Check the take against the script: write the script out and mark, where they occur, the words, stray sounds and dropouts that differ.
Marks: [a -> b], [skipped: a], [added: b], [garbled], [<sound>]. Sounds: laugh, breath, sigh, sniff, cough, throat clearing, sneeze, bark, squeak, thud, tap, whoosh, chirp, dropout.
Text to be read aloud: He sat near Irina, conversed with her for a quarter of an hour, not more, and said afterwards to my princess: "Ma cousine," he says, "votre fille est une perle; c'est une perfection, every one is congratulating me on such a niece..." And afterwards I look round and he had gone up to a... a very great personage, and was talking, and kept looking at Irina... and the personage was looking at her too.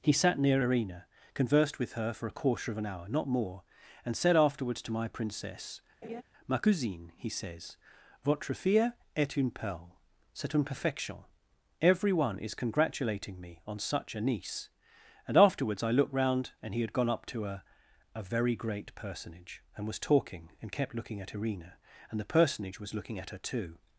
He sat near Irina, conversed with her for a quarter of an hour, not more, and said afterwards to my princess: [laugh] "Ma cousine," he says, "votre fille est une perle; c'est une perfection, every one is congratulating me on such a niece..." And afterwards I [look -> looked] round and he had gone up to a... a very great personage, and was talking, and kept looking at Irina... and the personage was looking at her too.